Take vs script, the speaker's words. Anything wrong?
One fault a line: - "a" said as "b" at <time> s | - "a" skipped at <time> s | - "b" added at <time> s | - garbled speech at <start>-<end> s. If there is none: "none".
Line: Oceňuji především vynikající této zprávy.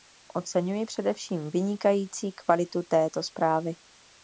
- "kvalitu" added at 2.3 s